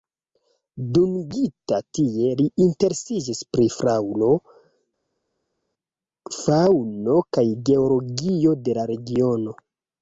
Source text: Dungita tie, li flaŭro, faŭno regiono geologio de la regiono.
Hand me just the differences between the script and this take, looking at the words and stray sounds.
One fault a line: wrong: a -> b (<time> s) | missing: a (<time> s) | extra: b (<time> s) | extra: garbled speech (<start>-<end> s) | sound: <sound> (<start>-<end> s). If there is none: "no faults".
extra: interesiĝis pri (2.6 s)
wrong: regiono -> kaj (7.4 s)